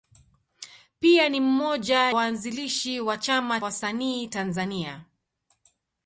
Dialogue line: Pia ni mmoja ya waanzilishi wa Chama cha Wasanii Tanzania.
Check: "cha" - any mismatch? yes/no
yes